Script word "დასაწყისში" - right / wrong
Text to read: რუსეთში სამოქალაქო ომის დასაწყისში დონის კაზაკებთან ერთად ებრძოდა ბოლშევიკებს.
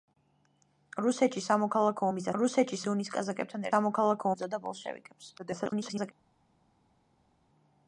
wrong